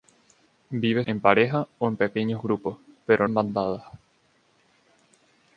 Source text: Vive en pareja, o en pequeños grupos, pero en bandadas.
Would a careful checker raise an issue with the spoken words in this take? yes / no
no